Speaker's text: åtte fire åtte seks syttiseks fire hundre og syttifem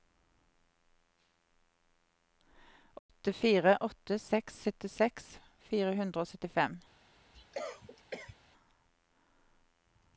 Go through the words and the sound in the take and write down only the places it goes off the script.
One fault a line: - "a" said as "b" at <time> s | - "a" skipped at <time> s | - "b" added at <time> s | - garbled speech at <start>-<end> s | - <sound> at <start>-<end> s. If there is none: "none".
- dropout at 3.0-3.1 s
- cough at 7.3-8.4 s